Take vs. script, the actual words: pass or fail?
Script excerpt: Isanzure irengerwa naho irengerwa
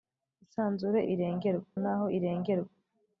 pass